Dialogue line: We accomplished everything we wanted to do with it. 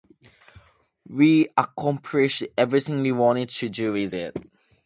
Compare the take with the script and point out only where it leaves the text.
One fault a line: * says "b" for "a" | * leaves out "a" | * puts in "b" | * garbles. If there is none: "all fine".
all fine